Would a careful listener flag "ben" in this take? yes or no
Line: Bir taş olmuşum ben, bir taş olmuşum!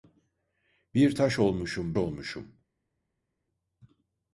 yes